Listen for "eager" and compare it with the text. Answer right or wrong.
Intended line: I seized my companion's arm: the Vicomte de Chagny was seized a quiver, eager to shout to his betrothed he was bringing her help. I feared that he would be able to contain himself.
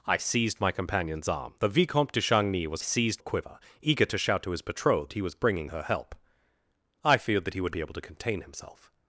right